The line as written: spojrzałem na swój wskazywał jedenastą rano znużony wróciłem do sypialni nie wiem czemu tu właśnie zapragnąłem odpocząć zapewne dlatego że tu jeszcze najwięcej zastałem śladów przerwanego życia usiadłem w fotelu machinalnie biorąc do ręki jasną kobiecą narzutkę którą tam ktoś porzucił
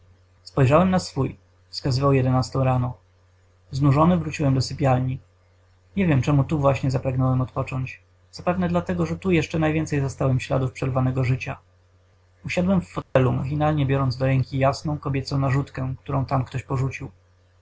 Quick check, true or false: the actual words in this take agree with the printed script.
true